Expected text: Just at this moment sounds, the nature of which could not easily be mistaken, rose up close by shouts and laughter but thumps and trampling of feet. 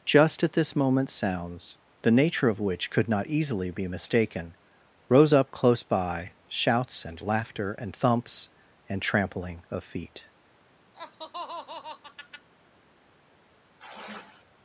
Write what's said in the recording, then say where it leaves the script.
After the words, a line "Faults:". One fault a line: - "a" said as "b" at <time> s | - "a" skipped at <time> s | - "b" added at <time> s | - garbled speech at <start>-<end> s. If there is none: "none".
Just at this moment sounds, the nature of which could not easily be mistaken, rose up close by shouts and laughter and thumps and trampling of feet.
Faults:
- "but" said as "and" at 7.7 s